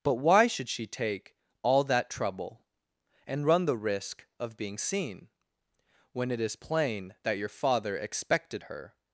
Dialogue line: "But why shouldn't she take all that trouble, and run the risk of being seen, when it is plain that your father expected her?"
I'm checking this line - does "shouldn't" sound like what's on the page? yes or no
no